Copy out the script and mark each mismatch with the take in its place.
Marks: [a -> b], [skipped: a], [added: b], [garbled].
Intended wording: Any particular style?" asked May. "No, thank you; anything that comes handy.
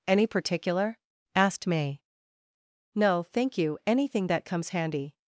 Any particular [skipped: style?"] asked May. "No, thank you; anything that comes handy.